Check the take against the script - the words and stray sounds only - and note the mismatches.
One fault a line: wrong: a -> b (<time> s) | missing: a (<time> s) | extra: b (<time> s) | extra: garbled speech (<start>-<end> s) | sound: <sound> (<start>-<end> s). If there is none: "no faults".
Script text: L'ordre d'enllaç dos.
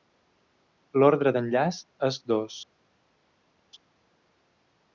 extra: és (2.1 s)